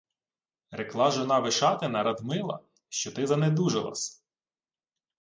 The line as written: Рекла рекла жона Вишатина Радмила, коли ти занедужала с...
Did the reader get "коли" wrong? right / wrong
wrong